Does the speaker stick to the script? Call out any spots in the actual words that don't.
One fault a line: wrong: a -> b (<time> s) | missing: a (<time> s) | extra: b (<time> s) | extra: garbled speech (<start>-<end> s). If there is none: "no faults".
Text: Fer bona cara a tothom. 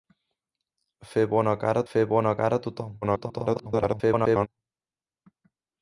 extra: fer bona cara (1.9 s)
extra: garbled speech (3.0-4.5 s)